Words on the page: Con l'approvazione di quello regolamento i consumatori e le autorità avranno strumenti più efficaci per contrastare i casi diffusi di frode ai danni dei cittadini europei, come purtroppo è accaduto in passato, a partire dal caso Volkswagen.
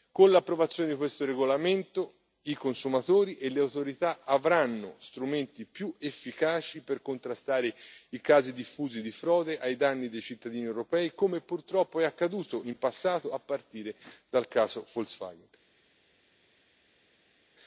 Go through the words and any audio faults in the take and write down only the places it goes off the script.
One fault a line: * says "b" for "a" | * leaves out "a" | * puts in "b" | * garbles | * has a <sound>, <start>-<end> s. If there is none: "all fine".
* says "questo" for "quello"